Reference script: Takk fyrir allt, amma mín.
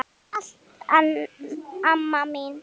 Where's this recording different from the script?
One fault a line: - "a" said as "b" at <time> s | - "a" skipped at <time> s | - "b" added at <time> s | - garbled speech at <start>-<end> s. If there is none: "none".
none